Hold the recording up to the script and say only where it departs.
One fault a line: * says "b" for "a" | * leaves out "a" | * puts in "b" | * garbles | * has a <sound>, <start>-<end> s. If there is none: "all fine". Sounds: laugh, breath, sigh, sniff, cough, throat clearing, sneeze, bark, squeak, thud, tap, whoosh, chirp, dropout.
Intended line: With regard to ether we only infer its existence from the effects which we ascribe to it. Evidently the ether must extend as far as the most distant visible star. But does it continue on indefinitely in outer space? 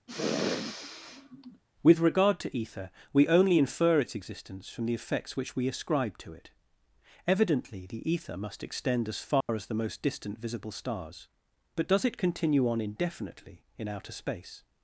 * has a sniff, 0.1-1.6 s
* has a dropout, 9.4-9.5 s
* says "stars" for "star"